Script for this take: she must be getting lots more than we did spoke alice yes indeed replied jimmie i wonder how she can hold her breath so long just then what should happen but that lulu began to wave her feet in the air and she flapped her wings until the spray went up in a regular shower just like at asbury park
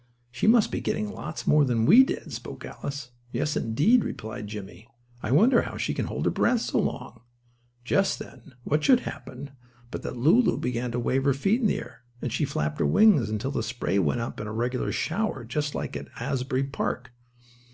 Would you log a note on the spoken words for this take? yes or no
no